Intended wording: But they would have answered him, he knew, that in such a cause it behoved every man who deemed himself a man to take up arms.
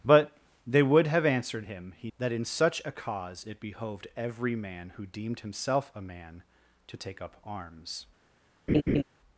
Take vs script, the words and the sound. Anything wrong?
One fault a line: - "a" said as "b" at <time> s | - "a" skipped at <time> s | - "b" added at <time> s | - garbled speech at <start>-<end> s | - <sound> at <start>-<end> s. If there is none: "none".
- "knew" skipped at 2.1 s
- laugh at 8.7-9.0 s